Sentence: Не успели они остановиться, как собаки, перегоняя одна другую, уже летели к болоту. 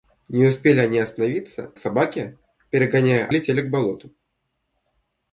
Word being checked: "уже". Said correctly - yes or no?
no